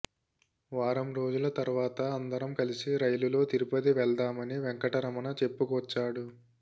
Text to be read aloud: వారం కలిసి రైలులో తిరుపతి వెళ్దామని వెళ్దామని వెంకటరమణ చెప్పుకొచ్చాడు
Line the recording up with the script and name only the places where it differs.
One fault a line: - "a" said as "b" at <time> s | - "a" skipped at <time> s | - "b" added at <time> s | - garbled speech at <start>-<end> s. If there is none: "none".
- "రోజుల తర్వాత అందరం" added at 1.1 s
- "వెళ్దామని" skipped at 4.6 s